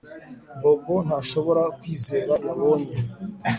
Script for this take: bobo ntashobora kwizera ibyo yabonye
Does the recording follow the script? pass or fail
fail